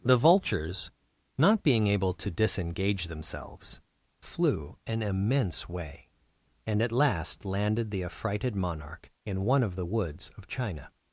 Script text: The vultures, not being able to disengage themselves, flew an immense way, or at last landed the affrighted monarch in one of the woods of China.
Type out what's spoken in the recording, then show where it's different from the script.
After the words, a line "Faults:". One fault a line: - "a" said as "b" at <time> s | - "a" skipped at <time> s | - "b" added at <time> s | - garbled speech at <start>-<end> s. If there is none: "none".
The vultures, not being able to disengage themselves, flew an immense way, and at last landed the affrighted monarch in one of the woods of China.
Faults:
- "or" said as "and" at 6.6 s